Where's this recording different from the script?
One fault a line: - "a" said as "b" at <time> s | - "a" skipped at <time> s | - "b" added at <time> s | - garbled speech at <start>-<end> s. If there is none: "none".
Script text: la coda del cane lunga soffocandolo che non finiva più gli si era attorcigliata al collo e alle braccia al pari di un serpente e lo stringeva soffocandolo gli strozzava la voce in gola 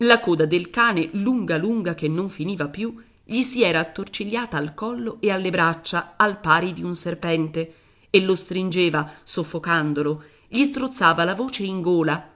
- "soffocandolo" said as "lunga" at 1.6 s